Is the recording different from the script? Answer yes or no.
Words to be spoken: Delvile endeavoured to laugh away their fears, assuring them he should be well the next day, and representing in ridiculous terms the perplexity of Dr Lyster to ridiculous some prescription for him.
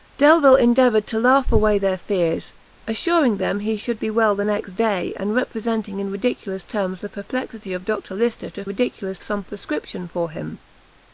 no